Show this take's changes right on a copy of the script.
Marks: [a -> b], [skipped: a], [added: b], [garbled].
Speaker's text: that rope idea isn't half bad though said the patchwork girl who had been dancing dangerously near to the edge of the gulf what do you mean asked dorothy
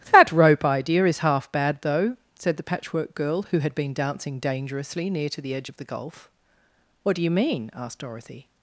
that rope idea [isn't -> is] half bad though said the patchwork girl who had been dancing dangerously near to the edge of the gulf what do you mean asked dorothy